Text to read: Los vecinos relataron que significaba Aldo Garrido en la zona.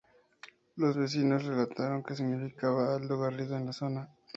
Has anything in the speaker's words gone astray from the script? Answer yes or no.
no